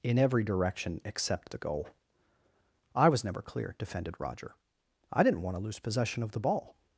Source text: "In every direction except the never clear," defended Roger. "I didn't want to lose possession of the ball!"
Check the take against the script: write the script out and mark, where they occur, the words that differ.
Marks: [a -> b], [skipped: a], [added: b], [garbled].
"In every direction except the [added: goal I was] never clear," defended Roger. "I didn't want to lose possession of the ball!"